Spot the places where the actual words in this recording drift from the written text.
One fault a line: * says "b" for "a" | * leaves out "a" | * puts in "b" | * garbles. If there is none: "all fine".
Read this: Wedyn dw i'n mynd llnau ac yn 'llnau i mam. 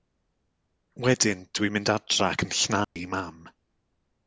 * says "adra" for "llnau"